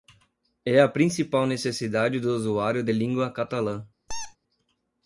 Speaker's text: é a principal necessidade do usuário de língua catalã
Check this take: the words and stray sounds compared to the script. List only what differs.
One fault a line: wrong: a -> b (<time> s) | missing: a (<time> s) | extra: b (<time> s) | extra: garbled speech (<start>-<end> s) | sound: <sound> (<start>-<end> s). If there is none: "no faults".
sound: squeak (4.1-4.4 s)